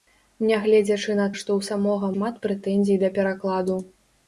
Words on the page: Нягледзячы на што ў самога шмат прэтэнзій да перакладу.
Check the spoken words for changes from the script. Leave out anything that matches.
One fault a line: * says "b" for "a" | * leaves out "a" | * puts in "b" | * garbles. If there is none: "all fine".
all fine